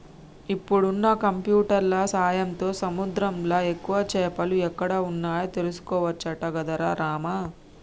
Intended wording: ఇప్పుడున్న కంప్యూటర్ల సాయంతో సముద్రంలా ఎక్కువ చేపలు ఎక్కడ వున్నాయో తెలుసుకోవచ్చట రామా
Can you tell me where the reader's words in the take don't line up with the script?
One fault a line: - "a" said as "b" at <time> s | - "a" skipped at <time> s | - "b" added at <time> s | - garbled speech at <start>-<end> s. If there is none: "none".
- "గదరా" added at 6.6 s